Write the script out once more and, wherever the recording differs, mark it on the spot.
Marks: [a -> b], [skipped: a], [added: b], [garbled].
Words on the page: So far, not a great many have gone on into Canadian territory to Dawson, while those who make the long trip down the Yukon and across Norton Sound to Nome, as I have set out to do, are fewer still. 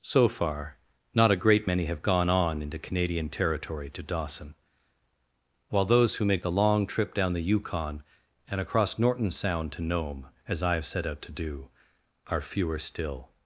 So far, not a great many have gone on into Canadian territory to Dawson, while those who make the long trip down the Yukon and across Norton Sound to Nome, as I have set out to do, are fewer still.